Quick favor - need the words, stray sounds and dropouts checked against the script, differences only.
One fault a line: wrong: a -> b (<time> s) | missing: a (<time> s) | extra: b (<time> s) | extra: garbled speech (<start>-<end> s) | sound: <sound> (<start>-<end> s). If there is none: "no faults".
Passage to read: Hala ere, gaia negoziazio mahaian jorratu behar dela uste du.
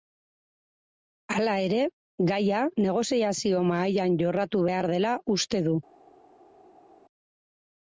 no faults